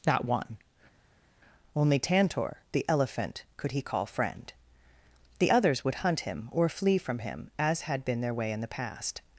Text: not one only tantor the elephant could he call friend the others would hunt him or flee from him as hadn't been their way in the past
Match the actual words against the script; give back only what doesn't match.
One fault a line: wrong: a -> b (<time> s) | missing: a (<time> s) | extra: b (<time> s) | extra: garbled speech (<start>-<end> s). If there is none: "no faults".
wrong: hadn't -> had (7.8 s)